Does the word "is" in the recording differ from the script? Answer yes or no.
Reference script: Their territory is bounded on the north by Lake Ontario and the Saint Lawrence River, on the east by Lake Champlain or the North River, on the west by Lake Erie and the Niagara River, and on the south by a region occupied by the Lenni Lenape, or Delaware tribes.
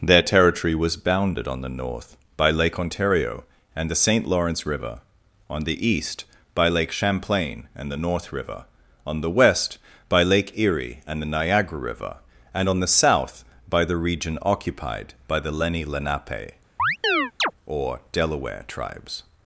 yes